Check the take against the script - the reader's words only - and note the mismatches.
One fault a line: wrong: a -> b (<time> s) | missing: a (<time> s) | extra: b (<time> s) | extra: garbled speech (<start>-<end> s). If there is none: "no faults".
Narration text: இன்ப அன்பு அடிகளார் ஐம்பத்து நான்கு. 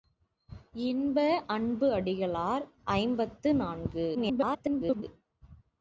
extra: garbled speech (4.1-5.0 s)